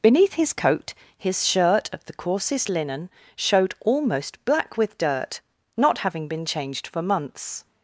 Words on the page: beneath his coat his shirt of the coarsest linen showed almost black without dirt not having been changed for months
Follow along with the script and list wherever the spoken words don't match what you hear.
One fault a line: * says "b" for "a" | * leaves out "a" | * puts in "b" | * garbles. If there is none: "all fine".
* says "with" for "without"